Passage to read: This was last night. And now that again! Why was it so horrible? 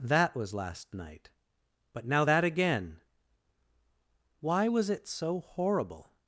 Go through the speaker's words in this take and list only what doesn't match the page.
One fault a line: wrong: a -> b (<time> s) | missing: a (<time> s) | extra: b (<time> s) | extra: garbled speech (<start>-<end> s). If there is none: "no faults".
wrong: This -> That (0.0 s)
wrong: And -> But (1.9 s)